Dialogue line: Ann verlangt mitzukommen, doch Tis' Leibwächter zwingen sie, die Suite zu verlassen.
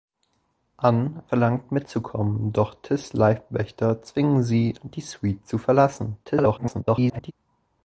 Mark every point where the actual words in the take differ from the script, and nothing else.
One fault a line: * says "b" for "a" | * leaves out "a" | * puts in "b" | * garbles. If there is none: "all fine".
* garbles